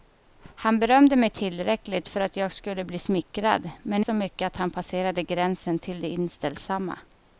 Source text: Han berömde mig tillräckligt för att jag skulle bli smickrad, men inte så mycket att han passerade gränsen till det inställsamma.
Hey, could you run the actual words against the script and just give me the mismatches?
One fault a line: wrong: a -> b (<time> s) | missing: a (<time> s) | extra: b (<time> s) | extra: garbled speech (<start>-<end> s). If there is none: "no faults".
missing: inte (4.0 s)